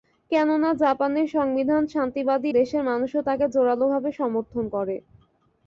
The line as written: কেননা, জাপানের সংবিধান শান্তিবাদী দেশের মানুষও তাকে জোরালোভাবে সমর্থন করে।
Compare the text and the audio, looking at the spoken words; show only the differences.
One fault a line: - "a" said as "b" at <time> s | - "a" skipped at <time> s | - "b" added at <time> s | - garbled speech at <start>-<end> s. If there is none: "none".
none